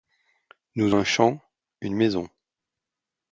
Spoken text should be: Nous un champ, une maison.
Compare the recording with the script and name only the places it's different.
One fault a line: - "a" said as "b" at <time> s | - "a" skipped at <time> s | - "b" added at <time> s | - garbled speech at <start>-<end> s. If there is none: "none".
none